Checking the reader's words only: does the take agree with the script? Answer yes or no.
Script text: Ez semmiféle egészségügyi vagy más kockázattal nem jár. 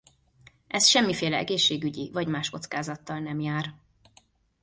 yes